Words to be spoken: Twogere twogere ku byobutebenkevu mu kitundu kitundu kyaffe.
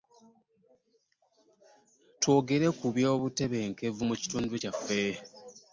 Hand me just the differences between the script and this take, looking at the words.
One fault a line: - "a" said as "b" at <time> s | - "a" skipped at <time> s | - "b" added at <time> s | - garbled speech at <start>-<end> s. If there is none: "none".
- "twogere" skipped at 2.7 s
- "kitundu" skipped at 4.5 s